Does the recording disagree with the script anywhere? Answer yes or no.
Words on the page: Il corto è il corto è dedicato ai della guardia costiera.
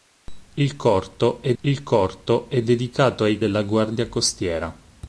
no